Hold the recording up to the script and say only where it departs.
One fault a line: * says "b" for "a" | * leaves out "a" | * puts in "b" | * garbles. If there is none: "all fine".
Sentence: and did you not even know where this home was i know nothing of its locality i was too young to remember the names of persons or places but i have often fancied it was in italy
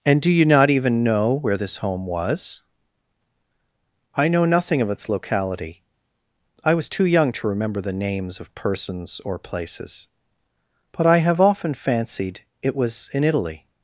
* says "do" for "did"